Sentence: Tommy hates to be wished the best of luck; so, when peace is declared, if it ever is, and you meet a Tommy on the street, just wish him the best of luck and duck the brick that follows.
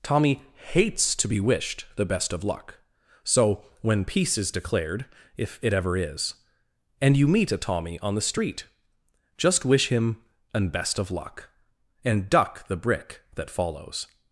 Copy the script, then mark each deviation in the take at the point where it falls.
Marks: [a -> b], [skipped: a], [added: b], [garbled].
Tommy hates to be wished the best of luck; so, when peace is declared, if it ever is, and you meet a Tommy on the street, just wish him [the -> an] best of luck and duck the brick that follows.